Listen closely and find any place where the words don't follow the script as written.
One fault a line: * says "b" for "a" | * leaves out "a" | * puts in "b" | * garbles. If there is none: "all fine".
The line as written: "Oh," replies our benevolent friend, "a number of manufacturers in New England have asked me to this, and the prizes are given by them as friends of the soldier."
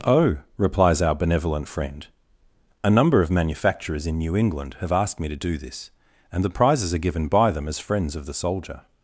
* puts in "do"